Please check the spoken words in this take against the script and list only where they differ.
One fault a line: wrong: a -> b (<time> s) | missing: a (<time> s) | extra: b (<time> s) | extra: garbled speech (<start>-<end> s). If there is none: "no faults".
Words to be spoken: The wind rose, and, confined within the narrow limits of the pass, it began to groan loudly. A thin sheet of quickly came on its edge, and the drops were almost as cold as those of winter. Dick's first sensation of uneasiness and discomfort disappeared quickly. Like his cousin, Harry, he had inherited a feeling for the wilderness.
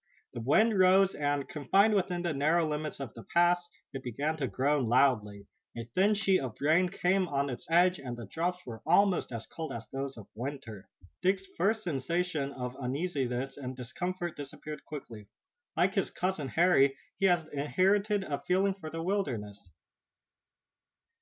wrong: quickly -> rain (6.6 s)